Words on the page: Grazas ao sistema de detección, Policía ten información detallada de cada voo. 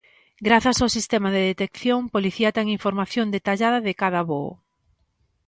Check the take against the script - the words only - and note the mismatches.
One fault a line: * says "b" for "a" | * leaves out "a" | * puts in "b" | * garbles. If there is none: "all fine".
all fine